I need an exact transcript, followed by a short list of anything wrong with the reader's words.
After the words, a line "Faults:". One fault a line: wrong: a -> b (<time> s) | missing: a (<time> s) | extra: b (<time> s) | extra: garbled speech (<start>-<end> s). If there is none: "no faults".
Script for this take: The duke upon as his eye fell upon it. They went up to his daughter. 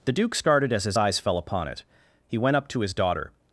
The duke started as his eyes fell upon it. He went up to his daughter.
Faults:
wrong: upon -> started (0.3 s)
wrong: eye -> eyes (0.9 s)
wrong: They -> He (2.3 s)